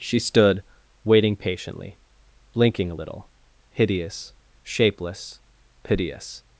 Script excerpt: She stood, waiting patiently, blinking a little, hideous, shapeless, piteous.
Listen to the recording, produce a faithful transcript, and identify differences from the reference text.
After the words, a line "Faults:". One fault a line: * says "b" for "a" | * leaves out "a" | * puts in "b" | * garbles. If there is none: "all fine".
She stood, waiting patiently, blinking a little, hideous, shapeless, piteous.
Faults:
all fine